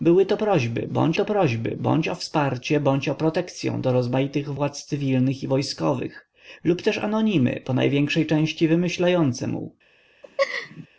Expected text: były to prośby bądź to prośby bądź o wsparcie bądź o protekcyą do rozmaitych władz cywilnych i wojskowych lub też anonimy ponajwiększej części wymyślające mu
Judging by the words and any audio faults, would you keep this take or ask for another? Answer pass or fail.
fail